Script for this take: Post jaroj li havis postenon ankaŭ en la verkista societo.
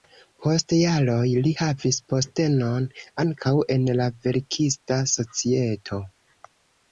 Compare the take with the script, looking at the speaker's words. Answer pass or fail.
pass